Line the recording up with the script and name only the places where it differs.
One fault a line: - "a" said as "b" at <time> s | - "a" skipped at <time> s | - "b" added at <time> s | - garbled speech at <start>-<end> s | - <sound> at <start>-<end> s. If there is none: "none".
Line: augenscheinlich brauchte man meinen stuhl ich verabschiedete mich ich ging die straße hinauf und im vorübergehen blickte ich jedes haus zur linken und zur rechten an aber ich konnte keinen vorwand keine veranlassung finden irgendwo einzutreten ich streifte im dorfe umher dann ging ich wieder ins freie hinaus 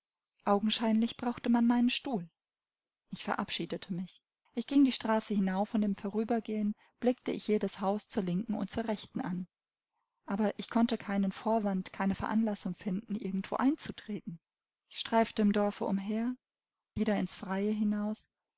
- "dann ging ich" skipped at 16.3 s